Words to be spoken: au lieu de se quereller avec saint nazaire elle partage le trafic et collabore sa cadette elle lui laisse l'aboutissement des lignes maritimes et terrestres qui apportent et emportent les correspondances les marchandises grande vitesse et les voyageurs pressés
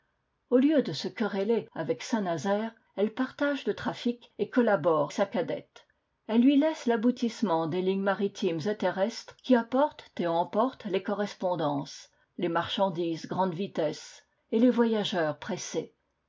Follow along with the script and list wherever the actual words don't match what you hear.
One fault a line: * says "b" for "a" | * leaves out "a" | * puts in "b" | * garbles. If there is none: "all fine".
all fine